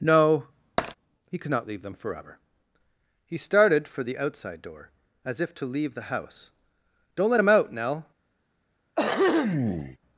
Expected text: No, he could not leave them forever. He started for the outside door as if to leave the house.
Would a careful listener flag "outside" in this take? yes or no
no